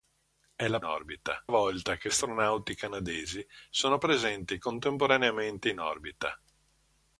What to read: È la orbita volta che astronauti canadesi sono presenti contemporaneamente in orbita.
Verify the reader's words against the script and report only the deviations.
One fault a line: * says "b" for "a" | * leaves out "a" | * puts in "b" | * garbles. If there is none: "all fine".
all fine